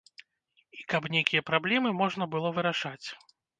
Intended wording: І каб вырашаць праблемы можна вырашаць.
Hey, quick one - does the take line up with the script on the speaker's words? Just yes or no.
no